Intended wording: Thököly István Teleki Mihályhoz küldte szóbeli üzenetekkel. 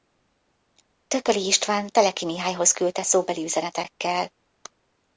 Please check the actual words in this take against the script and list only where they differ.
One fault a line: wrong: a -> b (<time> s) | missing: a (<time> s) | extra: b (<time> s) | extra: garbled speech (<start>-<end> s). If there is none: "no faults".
no faults